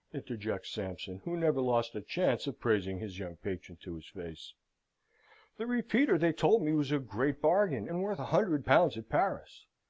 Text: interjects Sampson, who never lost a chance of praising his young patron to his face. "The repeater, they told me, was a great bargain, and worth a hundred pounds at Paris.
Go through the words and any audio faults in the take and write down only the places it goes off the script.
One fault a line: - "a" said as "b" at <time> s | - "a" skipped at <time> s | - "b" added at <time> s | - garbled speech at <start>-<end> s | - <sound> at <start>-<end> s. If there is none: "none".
none